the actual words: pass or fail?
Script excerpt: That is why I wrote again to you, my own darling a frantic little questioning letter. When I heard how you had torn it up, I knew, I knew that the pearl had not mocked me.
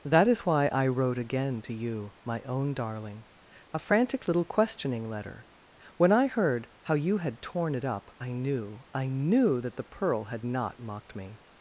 pass